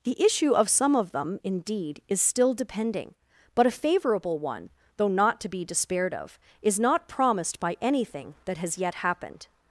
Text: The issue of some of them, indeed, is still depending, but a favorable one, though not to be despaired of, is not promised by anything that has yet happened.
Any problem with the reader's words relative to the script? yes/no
no